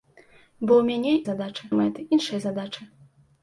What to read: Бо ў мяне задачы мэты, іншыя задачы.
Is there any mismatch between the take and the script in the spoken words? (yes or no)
no